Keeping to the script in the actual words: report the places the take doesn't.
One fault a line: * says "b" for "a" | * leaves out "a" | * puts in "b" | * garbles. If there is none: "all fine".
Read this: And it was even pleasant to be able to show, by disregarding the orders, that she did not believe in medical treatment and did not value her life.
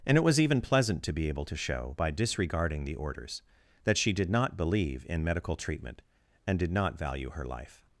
all fine